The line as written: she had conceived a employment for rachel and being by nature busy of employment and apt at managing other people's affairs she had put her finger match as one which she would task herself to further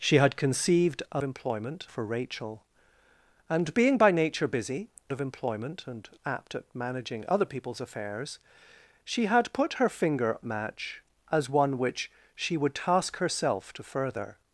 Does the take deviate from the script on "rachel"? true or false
false